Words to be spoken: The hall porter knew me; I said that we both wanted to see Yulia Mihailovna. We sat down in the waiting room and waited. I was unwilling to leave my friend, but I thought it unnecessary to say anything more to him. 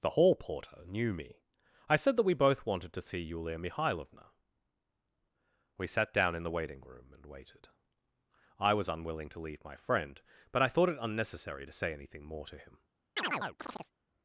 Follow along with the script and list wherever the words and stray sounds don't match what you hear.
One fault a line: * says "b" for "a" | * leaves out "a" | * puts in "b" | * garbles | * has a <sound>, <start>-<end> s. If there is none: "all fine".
* has a chirp, 13.2-13.9 s